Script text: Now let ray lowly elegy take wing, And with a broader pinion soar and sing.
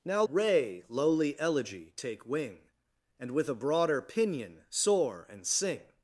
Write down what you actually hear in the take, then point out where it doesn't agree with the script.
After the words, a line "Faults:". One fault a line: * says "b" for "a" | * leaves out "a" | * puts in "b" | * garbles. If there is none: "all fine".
Now ray lowly elegy take wing, And with a broader pinion soar and sing.
Faults:
* leaves out "let"